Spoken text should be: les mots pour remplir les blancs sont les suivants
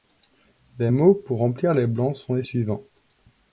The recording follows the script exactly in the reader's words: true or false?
true